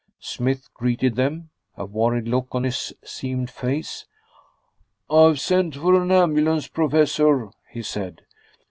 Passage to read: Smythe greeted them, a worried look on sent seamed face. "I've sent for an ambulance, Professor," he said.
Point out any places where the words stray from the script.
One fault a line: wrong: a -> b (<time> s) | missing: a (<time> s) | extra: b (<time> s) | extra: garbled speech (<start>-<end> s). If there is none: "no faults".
wrong: sent -> his (2.6 s)